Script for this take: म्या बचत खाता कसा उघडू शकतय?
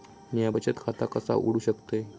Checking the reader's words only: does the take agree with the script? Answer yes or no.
yes